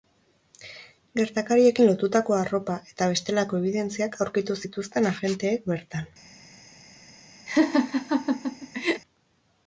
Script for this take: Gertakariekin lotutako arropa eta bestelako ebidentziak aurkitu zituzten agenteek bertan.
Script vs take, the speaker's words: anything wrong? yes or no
no